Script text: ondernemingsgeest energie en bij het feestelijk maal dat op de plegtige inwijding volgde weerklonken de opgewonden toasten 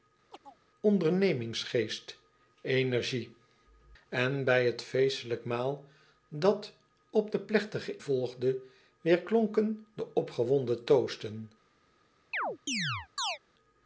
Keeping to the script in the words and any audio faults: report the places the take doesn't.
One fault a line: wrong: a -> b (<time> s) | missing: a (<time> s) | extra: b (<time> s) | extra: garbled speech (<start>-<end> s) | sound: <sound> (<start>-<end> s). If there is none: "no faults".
sound: chirp (0.3-0.6 s)
missing: inwijding (8.0 s)
sound: chirp (12.3-13.4 s)